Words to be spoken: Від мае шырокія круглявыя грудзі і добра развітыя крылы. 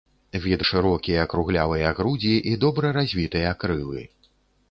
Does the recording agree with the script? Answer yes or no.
no